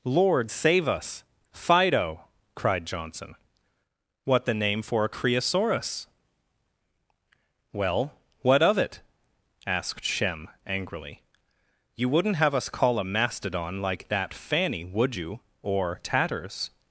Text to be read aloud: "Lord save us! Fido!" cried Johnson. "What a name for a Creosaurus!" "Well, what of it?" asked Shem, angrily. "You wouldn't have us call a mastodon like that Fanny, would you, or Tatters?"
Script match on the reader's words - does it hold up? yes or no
no